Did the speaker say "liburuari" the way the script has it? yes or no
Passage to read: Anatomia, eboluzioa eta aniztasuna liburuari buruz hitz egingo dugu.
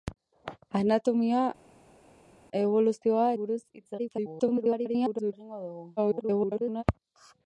no